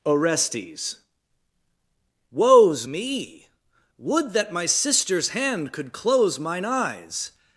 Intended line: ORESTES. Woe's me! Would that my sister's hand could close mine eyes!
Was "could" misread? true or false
false